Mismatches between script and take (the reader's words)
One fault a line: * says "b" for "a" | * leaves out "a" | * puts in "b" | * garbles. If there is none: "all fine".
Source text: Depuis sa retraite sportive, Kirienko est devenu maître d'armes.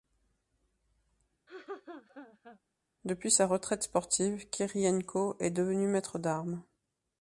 all fine